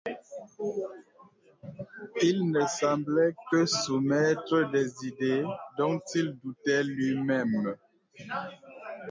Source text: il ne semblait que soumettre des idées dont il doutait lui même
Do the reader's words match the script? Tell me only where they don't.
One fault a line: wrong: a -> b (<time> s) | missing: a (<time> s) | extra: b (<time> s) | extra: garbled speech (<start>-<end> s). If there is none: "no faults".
no faults